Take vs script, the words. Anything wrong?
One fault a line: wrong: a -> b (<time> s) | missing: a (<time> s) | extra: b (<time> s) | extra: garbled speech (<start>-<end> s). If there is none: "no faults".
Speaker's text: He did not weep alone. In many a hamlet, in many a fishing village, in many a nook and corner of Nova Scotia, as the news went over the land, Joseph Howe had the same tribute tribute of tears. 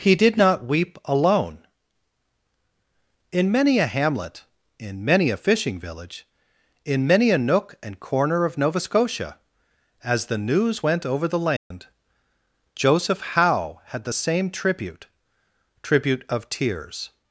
no faults